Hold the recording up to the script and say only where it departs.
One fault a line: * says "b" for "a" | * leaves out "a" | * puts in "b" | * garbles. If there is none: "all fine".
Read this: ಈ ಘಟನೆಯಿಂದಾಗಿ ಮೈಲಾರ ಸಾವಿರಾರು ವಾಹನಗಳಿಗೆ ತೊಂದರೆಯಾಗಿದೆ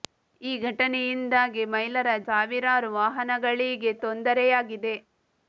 all fine